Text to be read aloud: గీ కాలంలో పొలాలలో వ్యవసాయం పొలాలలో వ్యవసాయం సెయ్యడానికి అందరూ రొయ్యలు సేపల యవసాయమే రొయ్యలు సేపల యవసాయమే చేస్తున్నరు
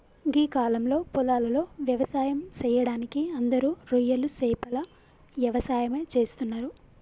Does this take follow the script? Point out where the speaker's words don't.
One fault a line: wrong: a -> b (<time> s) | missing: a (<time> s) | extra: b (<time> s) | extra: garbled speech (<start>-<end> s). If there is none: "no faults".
missing: పొలాలలో వ్యవసాయం (2.4 s)
missing: రొయ్యలు సేపల యవసాయమే (6.0 s)